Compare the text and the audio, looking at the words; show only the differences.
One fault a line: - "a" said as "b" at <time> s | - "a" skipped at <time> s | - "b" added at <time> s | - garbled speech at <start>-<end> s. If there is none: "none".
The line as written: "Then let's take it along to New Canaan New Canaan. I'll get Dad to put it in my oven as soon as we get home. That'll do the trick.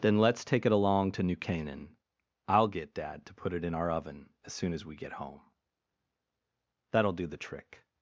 - "New Canaan" skipped at 2.0 s
- "my" said as "our" at 3.7 s